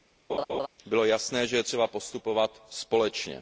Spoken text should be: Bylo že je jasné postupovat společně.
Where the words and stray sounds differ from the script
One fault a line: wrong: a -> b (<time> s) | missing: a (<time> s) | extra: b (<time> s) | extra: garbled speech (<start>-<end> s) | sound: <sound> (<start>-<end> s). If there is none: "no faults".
sound: laugh (0.3-0.7 s)
extra: jasné (1.0 s)
wrong: jasné -> třeba (1.6 s)